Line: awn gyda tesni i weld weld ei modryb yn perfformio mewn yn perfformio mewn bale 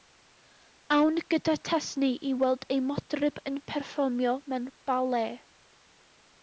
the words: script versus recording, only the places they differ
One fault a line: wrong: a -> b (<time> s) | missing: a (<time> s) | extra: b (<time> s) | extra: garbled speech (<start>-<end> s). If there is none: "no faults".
missing: weld (2.7 s)
missing: yn perfformio mewn (4.7 s)